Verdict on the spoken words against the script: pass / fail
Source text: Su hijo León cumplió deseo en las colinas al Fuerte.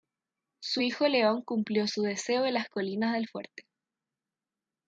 fail